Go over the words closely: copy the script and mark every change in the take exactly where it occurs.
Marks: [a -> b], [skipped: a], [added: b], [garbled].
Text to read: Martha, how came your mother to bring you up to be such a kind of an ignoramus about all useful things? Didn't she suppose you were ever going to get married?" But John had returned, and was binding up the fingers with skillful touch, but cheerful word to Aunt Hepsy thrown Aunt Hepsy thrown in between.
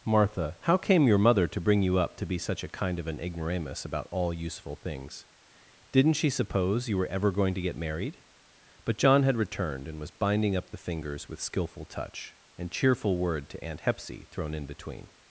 Martha, how came your mother to bring you up to be such a kind of an ignoramus about all useful things? Didn't she suppose you were ever going to get married?" But John had returned, and was binding up the fingers with skillful touch, [but -> and] cheerful word to Aunt Hepsy thrown [skipped: Aunt Hepsy thrown] in between.